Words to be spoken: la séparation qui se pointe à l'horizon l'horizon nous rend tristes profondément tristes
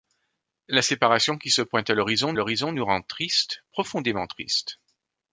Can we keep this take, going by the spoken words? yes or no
yes